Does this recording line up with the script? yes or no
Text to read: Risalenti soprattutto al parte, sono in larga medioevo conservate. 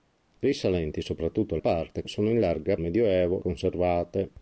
yes